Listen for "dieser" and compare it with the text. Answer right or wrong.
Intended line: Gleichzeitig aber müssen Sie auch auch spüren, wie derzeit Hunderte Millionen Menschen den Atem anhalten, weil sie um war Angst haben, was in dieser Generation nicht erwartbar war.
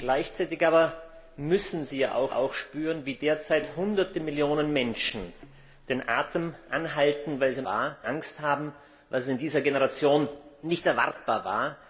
right